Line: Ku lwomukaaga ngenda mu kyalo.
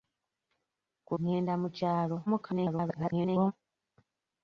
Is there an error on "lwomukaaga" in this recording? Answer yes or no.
yes